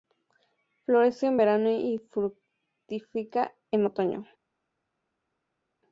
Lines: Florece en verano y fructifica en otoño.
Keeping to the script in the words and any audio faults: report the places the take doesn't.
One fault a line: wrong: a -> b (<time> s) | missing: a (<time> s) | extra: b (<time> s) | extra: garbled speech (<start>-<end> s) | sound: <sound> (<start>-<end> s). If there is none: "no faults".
no faults